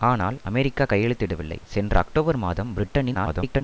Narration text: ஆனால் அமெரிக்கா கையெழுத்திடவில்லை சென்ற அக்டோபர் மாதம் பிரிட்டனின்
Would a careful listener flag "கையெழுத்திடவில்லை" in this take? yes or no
no